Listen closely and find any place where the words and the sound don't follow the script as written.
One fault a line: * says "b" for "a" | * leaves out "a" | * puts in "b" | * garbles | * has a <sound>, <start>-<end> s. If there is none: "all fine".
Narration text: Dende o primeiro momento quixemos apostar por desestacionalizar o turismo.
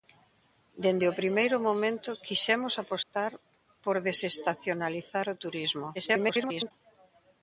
* has a dropout, 3.0-3.1 s
* garbles